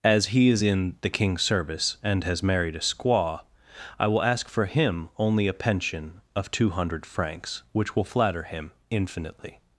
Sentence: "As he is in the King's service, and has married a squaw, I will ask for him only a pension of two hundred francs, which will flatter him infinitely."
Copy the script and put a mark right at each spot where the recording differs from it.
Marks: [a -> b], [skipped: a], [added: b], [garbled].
"As he is in the King's service, and has married a squaw, I will ask for him only a pension of two hundred francs, which will flatter him infinitely."